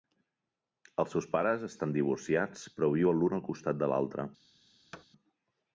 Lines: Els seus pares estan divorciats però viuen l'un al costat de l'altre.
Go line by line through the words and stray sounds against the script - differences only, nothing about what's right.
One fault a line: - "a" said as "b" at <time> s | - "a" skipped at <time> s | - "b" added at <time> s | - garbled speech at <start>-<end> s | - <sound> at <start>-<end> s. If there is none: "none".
- thud at 4.9-5.1 s